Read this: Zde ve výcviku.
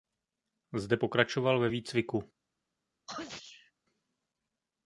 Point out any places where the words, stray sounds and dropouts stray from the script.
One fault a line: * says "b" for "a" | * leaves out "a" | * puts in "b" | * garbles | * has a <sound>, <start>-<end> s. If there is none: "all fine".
* puts in "pokračoval"
* has a sneeze, 3.1-3.7 s